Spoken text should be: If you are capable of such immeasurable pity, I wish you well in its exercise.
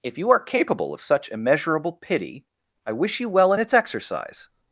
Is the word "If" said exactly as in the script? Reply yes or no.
yes